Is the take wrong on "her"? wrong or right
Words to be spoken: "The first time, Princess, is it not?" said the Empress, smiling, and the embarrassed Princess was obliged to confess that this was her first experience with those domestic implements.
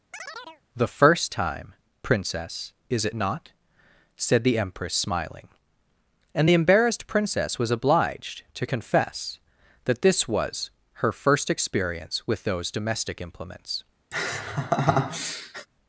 right